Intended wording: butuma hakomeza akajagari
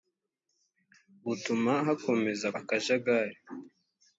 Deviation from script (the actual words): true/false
false